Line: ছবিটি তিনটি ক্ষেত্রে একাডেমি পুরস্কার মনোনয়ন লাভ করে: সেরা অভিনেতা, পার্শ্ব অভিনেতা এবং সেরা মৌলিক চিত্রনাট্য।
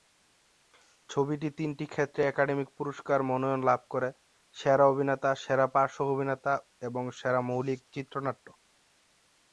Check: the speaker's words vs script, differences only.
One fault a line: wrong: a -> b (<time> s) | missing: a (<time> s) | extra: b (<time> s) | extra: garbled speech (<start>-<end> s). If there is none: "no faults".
extra: সেরা (5.4 s)